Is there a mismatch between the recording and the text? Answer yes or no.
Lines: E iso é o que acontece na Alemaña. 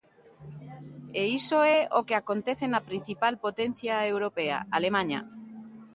yes